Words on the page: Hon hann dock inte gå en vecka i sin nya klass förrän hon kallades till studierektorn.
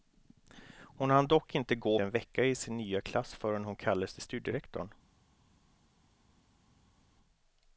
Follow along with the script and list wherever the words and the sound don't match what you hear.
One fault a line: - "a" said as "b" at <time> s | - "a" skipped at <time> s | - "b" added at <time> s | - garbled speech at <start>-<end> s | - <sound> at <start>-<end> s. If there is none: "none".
none